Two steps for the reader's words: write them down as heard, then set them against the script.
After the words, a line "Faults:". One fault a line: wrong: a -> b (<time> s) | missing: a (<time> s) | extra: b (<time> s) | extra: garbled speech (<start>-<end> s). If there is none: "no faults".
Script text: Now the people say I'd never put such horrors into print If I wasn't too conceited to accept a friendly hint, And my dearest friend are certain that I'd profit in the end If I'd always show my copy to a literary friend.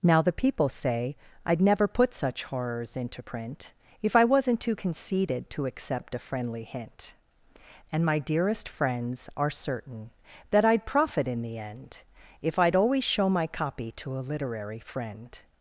Now the people say I'd never put such horrors into print If I wasn't too conceited to accept a friendly hint, And my dearest friends are certain that I'd profit in the end If I'd always show my copy to a literary friend.
Faults:
wrong: friend -> friends (8.7 s)